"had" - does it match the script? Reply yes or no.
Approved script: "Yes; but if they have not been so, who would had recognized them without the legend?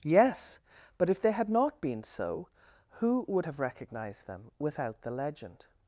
no